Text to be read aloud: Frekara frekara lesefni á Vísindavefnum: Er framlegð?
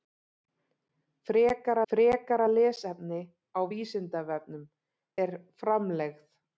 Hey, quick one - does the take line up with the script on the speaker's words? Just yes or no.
yes